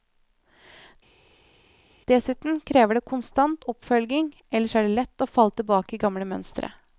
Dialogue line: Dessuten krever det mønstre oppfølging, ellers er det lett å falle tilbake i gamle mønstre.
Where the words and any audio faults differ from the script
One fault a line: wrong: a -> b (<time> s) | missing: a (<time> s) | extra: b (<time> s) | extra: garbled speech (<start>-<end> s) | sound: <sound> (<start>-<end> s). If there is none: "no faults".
wrong: mønstre -> konstant (3.1 s)